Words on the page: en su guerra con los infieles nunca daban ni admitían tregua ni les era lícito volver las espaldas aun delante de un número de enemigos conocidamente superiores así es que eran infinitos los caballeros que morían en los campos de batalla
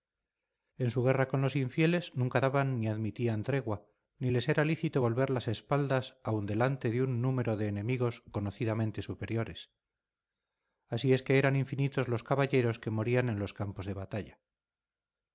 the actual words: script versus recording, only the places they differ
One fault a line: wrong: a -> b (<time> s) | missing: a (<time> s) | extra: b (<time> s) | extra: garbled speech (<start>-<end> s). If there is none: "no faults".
no faults